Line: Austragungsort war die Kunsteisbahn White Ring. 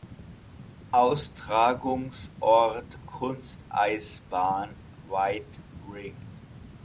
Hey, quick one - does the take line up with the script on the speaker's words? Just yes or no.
no